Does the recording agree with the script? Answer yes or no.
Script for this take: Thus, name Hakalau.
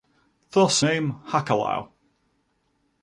yes